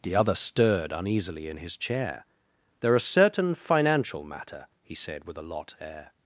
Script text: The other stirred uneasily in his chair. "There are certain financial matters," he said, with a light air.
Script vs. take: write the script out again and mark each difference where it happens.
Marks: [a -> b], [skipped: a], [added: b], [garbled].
The other stirred uneasily in his chair. "There are certain financial [matters," -> matter] he said, with a [light -> lot] air.